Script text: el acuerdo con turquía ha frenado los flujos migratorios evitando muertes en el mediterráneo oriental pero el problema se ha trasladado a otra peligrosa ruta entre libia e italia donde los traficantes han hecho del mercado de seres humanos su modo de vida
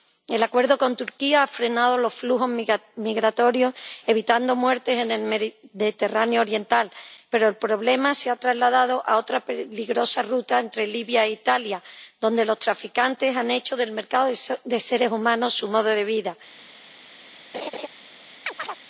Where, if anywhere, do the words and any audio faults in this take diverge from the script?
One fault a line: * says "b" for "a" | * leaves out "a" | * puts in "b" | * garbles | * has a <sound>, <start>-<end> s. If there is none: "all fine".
* has a laugh, 17.5-17.9 s
* has a chirp, 18.5-18.8 s